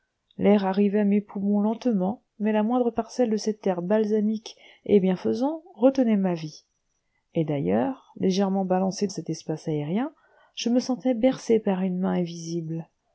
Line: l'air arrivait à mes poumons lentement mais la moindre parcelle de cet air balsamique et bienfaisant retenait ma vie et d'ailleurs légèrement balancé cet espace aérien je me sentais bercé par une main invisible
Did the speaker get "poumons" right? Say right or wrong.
right